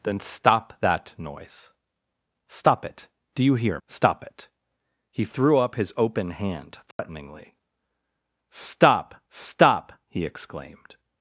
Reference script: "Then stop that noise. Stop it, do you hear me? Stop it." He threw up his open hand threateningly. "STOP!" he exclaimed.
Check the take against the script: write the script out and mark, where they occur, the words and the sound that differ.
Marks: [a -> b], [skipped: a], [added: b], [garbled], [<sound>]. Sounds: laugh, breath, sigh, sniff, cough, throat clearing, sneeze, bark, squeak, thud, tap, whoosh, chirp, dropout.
"Then stop that noise. Stop it, do you hear [skipped: me?] Stop it." He threw up his open hand threateningly. [dropout] "STOP!" [added: stop] he exclaimed.